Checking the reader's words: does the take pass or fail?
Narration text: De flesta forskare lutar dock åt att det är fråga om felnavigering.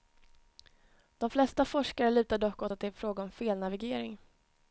pass